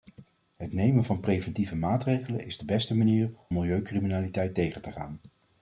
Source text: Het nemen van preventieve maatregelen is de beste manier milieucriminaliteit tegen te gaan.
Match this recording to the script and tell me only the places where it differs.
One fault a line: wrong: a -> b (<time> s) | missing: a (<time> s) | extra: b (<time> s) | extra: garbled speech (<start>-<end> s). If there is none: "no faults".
no faults